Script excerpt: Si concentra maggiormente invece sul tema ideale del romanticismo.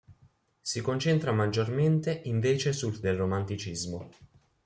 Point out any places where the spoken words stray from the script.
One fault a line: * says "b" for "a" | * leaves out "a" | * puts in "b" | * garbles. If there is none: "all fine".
* leaves out "tema ideale"